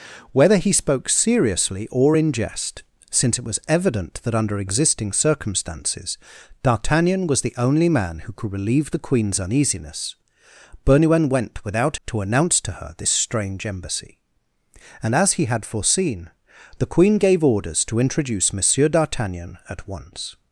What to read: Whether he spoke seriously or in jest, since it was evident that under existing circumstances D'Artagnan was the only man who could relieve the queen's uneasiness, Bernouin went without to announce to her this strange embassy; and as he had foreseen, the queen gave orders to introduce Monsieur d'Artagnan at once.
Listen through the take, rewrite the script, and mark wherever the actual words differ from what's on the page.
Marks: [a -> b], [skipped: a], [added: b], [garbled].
Whether he spoke seriously or in jest, since it was evident that under existing circumstances D'Artagnan was the only man who could relieve the queen's uneasiness, Bernouin went without to announce to her this strange embassy; and as he had foreseen, the queen gave orders to introduce Monsieur d'Artagnan at once.